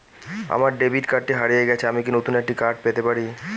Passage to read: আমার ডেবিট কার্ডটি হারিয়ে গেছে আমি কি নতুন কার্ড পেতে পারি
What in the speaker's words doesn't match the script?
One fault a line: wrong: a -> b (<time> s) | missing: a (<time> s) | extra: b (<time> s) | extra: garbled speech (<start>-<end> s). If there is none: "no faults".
extra: একটি (2.4 s)